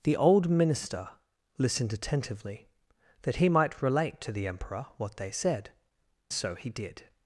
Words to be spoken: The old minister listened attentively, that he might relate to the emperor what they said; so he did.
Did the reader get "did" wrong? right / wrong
right